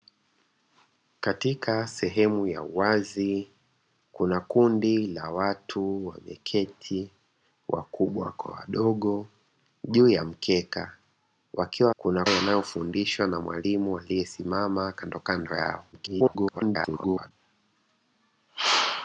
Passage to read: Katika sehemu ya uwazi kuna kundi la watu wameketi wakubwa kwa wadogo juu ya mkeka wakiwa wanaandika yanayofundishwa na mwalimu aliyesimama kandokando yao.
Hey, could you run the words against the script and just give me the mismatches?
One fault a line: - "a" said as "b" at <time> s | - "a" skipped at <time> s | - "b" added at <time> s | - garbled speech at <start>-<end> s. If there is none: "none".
- "wanaandika" said as "kuna" at 12.0 s
- garbled speech at 15.9-17.3 s